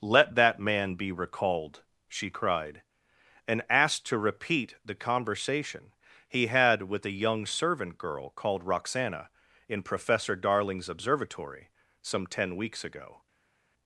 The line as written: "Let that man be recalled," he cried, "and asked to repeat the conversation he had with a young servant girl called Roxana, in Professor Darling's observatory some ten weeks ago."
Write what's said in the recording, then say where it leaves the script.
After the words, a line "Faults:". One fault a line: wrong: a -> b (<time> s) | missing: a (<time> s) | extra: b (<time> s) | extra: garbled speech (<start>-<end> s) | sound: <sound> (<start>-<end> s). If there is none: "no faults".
"Let that man be recalled," she cried, "and asked to repeat the conversation he had with a young servant girl called Roxana, in Professor Darling's observatory some ten weeks ago."
Faults:
wrong: he -> she (2.1 s)